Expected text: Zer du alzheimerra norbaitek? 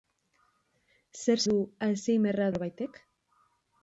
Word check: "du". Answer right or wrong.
right